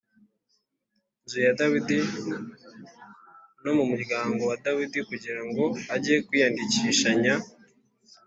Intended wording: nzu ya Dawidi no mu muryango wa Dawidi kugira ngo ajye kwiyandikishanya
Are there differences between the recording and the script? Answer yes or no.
no